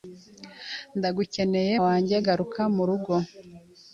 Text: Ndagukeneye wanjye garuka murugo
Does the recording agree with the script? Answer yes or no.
yes